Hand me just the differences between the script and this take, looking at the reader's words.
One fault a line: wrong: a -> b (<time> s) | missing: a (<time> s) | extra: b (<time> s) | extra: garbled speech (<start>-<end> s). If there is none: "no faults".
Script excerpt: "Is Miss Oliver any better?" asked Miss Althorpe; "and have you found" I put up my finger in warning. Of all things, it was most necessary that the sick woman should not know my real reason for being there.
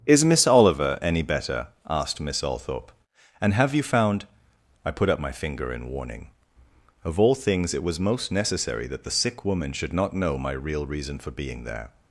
no faults